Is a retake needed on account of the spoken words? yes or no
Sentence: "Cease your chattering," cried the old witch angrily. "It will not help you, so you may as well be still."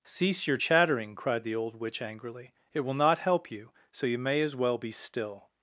no